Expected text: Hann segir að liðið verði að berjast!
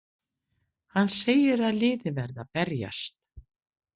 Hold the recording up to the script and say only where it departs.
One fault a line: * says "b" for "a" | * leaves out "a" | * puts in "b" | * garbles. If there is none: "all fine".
all fine